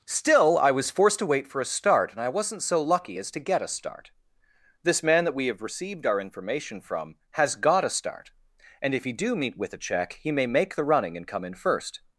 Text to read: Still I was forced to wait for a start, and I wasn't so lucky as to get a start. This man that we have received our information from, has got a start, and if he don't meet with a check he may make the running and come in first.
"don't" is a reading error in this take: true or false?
true